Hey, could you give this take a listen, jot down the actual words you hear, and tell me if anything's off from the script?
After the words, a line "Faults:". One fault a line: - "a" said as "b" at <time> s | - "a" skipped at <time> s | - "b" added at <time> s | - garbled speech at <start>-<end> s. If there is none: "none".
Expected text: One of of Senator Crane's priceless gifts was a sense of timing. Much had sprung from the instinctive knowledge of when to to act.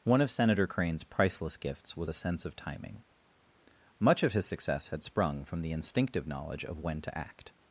One of Senator Crane's priceless gifts was a sense of timing. Much of his success had sprung from the instinctive knowledge of when to act.
Faults:
- "of" skipped at 0.3 s
- "of his success" added at 4.2 s
- "to" skipped at 7.2 s